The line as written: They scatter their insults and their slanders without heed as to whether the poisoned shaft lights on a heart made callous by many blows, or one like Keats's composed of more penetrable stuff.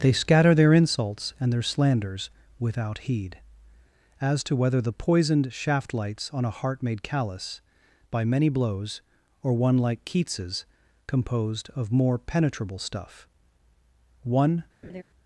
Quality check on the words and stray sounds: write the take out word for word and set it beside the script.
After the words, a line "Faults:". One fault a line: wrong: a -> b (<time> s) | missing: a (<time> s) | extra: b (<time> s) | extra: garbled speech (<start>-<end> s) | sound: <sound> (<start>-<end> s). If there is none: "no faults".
They scatter their insults and their slanders without heed as to whether the poisoned shaft lights on a heart made callous by many blows, or one like Keats's composed of more penetrable stuff. One
Faults:
extra: One (14.2 s)
sound: laugh (14.8-15.0 s)